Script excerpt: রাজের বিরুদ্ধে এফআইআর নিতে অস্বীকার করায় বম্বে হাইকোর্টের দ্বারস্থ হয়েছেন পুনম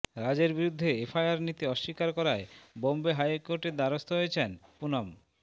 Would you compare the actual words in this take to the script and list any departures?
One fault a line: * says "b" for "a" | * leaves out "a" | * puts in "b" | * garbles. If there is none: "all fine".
all fine